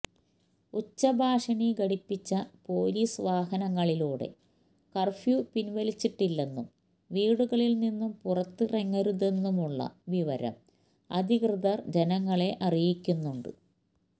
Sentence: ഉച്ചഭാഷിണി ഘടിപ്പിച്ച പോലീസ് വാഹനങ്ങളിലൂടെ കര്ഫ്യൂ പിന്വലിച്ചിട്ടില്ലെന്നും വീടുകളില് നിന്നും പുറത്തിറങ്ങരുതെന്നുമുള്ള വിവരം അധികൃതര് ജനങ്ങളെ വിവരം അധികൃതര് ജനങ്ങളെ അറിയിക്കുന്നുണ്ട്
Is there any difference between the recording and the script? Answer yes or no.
yes